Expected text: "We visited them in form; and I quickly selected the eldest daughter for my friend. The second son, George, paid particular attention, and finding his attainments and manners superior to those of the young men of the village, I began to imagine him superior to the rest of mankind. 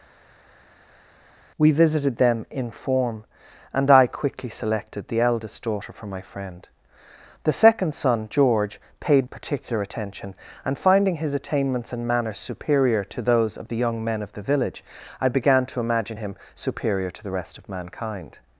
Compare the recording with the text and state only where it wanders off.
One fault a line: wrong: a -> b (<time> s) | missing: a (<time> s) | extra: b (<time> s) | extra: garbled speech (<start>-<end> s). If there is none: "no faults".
no faults